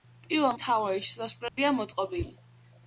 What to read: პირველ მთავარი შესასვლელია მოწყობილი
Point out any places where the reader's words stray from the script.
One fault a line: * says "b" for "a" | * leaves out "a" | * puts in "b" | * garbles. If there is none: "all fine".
all fine